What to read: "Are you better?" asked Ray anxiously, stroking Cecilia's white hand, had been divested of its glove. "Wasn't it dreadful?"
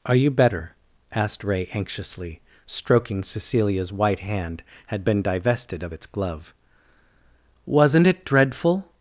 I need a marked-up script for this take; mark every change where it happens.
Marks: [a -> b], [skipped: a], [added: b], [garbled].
"Are you better?" asked Ray anxiously, stroking Cecilia's white hand, had been divested of its glove. "Wasn't it dreadful?"